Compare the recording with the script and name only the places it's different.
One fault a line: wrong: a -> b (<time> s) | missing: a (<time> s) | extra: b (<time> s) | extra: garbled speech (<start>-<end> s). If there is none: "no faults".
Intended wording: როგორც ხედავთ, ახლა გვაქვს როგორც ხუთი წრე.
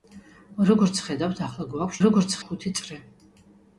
no faults